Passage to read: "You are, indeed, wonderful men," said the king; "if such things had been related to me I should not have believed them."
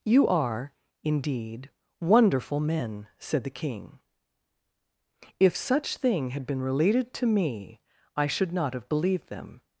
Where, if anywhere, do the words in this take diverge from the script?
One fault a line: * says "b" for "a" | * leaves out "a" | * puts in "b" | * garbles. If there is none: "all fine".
* says "thing" for "things"